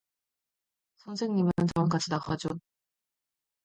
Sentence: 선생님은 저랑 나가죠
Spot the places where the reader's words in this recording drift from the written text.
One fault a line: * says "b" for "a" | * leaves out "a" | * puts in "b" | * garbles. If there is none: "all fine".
* puts in "같이"